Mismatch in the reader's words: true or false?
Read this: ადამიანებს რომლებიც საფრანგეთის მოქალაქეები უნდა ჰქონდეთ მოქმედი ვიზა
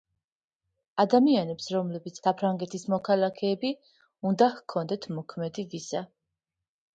false